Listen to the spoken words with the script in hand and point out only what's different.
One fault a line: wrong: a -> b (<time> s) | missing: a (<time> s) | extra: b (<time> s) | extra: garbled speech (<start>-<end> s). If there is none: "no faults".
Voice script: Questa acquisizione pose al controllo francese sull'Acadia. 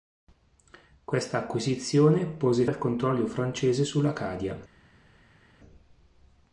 no faults